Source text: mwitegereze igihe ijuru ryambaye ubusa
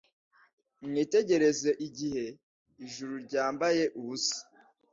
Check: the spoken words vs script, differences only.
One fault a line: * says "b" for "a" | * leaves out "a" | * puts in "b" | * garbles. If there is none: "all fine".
all fine